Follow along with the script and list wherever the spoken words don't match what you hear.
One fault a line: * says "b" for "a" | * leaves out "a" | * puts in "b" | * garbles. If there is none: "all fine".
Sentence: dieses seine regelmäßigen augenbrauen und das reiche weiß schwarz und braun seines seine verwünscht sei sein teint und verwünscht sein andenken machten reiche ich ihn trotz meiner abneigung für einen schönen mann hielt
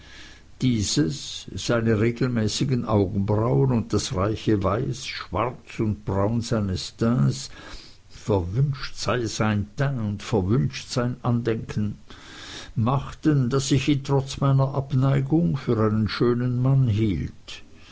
* says "teints" for "seine"
* says "daß" for "reiche"